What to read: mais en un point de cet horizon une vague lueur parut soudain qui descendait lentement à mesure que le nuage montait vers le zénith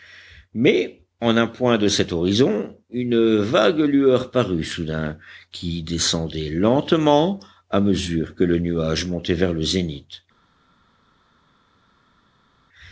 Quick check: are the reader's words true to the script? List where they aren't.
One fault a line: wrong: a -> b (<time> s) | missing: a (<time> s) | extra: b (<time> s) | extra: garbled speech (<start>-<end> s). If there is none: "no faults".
no faults